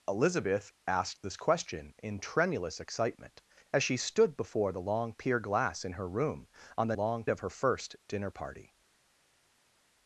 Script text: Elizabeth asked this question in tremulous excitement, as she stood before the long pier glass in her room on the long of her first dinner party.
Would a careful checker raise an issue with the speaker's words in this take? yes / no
no